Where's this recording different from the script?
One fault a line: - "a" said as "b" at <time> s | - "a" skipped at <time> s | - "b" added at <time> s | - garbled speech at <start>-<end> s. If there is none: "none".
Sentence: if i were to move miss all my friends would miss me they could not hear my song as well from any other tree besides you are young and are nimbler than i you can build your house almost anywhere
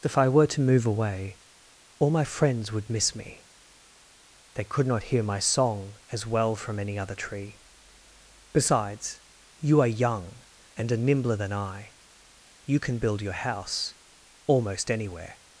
- "miss" said as "away" at 0.9 s